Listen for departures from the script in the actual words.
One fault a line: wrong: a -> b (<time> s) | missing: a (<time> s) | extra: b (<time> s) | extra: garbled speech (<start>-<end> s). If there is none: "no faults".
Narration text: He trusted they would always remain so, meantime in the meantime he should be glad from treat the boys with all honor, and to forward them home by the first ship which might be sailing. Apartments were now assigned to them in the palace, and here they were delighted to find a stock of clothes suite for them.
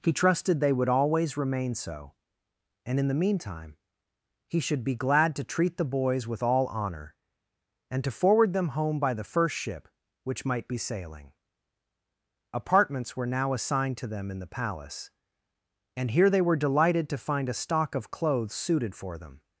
wrong: meantime -> and (2.9 s)
wrong: from -> to (5.3 s)
wrong: suite -> suited (18.5 s)